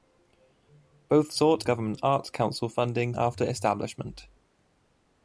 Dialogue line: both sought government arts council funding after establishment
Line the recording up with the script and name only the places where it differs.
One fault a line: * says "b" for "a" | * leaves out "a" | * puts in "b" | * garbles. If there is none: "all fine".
all fine